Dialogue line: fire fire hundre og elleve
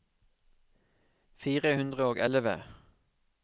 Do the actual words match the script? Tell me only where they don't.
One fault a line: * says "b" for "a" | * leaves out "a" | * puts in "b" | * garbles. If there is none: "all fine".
* leaves out "fire"